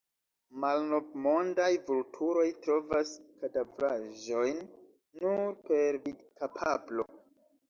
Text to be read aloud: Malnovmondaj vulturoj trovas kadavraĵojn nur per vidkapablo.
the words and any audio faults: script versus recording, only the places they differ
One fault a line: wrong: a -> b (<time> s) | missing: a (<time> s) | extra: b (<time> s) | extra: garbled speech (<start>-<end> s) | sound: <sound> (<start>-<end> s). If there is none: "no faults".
no faults